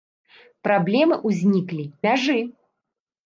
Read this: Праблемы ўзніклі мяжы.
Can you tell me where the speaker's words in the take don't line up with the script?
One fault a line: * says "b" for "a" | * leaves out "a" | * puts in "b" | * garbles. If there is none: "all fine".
all fine